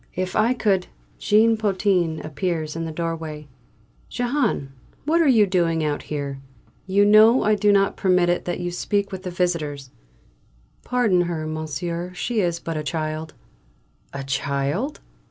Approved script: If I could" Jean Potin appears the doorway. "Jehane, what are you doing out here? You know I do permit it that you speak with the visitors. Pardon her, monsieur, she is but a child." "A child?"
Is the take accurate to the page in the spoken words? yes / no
no